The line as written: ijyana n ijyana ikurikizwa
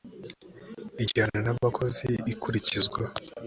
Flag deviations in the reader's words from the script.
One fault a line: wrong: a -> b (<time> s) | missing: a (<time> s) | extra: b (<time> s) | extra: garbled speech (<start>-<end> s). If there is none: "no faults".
wrong: ijyana -> abakozi (1.5 s)